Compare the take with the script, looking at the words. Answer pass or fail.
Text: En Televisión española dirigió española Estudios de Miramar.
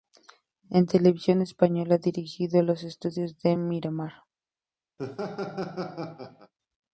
fail